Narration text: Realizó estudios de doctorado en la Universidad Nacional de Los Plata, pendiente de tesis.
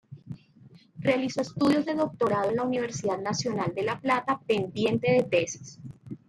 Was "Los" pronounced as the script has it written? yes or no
no